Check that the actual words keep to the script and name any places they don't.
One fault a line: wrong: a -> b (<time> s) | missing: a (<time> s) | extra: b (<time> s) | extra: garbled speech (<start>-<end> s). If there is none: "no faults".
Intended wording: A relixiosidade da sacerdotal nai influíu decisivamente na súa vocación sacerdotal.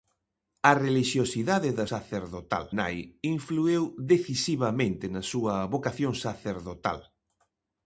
no faults